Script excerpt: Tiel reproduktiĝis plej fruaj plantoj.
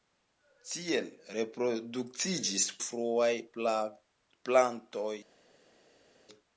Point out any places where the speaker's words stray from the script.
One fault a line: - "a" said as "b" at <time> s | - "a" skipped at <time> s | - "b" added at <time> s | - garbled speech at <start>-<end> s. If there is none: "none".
- "plej" skipped at 2.7 s